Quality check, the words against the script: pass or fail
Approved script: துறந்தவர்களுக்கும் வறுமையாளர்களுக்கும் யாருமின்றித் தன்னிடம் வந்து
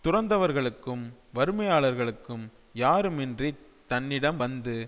pass